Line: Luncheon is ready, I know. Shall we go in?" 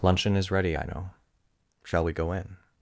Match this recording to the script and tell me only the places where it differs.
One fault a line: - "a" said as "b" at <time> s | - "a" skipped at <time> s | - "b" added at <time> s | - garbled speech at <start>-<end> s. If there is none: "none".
none